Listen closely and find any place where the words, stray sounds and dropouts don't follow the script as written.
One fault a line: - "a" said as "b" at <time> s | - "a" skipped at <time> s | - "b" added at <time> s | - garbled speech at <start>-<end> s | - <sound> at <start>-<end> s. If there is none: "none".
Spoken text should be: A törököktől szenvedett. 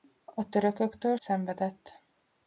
none